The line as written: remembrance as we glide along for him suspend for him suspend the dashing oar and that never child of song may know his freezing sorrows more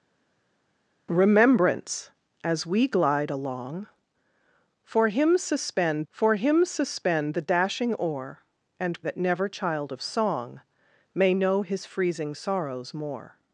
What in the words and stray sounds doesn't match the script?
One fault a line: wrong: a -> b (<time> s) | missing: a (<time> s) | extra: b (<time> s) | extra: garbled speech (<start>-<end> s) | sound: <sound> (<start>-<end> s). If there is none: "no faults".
no faults